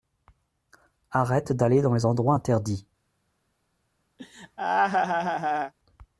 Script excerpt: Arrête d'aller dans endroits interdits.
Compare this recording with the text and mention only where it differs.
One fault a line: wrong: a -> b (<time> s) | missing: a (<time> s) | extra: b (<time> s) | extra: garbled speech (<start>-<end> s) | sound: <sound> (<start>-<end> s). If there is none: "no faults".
extra: les (1.9 s)
sound: laugh (4.2-5.7 s)